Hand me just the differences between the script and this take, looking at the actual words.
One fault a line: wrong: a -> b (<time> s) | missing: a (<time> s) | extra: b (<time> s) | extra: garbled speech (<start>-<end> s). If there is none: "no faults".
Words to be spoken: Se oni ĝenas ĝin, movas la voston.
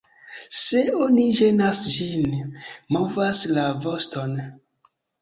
no faults